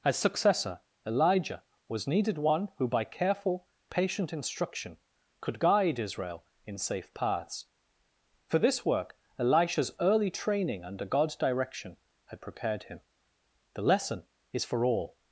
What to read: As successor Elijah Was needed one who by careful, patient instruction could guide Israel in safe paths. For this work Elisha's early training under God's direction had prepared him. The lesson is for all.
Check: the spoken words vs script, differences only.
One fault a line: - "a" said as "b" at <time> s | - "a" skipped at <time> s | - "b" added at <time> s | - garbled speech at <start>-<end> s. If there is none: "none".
none